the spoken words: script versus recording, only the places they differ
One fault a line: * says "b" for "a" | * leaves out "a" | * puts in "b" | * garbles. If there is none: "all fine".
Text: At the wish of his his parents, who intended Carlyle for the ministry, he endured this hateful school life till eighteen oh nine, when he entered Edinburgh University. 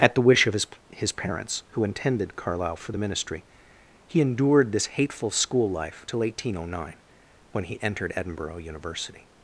all fine